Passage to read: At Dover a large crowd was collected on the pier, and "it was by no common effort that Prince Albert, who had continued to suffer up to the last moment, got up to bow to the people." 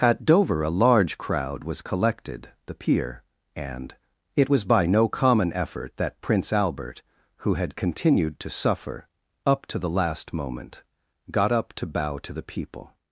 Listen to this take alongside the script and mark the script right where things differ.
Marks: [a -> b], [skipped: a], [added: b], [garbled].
At Dover a large crowd was collected [skipped: on] the pier, and "it was by no common effort that Prince Albert, who had continued to suffer up to the last moment, got up to bow to the people."